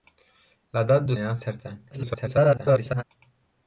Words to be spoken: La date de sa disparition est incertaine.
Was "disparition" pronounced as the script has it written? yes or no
no